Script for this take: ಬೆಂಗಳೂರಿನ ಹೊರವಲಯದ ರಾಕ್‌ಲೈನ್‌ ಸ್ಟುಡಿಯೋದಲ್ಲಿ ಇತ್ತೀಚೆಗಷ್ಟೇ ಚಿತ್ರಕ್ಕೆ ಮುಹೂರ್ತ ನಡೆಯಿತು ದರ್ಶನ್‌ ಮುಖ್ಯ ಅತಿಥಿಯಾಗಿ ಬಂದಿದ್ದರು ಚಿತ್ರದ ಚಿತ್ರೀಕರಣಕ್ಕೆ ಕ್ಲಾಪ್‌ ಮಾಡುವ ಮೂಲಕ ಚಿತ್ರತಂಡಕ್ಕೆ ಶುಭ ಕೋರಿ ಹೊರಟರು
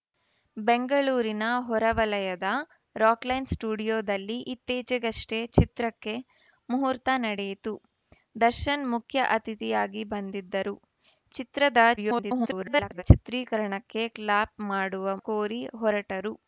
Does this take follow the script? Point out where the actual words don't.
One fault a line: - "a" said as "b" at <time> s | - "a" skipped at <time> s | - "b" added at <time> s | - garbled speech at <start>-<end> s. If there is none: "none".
- garbled speech at 12.0-13.0 s
- "ಮೂಲಕ ಚಿತ್ರತಂಡಕ್ಕೆ ಶುಭ" skipped at 15.1 s